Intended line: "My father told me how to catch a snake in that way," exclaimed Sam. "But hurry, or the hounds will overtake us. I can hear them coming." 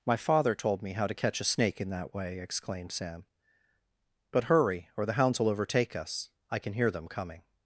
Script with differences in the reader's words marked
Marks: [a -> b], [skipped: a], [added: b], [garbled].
"My father told me how to catch a snake in that way," exclaimed Sam. "But hurry, or the hounds will overtake us. I can hear them coming."